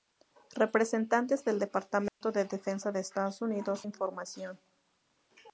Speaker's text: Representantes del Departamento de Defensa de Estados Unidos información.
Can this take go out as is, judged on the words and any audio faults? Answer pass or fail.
fail